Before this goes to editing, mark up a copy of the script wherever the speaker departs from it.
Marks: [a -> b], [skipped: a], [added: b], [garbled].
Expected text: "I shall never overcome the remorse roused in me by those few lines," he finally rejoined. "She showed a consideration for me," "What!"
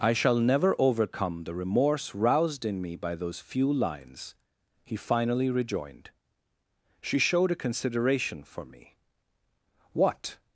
"I shall never overcome the remorse roused in me by those few lines," he finally rejoined. "She showed a consideration for me," "What!"